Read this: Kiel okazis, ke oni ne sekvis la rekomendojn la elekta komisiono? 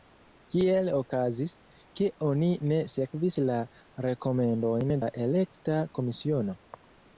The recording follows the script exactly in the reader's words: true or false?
true